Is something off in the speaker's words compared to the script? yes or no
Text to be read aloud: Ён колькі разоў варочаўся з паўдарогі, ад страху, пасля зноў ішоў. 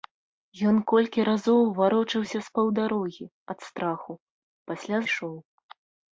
yes